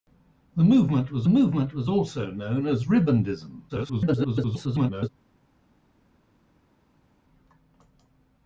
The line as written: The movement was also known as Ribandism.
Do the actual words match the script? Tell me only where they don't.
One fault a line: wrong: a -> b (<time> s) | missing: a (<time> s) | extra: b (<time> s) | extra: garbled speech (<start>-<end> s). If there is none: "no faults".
extra: movement was (1.3 s)
extra: garbled speech (3.7-5.1 s)